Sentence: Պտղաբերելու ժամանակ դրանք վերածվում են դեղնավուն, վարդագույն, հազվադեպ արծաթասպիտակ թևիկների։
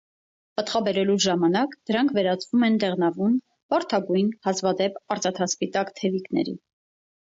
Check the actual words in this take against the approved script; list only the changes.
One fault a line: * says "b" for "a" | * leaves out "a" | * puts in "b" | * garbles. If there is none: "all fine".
all fine